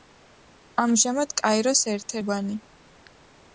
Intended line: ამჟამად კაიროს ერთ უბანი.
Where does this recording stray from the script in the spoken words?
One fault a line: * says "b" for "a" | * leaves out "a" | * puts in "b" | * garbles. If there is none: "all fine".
all fine